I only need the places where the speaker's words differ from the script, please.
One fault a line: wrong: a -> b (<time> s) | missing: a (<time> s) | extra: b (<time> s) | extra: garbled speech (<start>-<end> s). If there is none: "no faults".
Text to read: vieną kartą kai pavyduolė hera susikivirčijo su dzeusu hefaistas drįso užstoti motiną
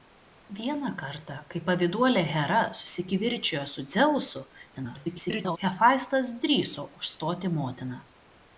extra: garbled speech (4.7-5.6 s)